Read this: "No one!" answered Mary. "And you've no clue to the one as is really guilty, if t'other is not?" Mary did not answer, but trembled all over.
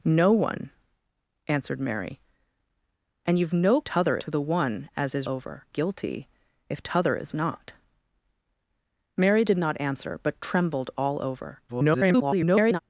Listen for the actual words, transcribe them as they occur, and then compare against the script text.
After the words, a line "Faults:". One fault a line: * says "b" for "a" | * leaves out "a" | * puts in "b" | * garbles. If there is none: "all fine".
"No one!" answered Mary. "And you've no t'other to the one as is over guilty, if t'other is not?" Mary did not answer, but trembled all over. [garbled]
Faults:
* says "t'other" for "clue"
* says "over" for "really"
* garbles